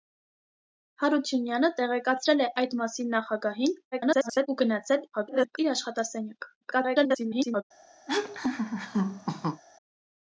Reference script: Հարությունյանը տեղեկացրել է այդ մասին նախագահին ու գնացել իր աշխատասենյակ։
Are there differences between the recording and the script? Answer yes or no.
yes